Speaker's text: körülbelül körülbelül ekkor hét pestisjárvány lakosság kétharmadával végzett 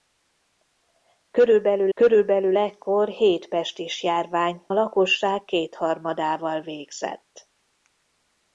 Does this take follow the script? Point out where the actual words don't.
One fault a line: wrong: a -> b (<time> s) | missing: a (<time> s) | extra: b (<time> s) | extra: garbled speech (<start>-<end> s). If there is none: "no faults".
no faults